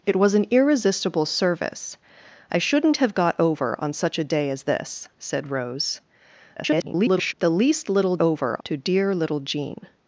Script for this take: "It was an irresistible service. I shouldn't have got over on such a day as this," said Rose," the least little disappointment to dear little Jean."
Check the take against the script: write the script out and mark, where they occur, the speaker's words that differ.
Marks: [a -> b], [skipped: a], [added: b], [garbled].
"It was an irresistible service. I shouldn't have got over on such a day as this," said Rose," [garbled] the least little [disappointment -> over] to dear little Jean."